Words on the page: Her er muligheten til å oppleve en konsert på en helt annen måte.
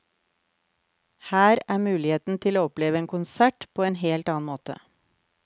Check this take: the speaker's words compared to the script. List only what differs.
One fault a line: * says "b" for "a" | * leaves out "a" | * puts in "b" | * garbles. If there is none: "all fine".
all fine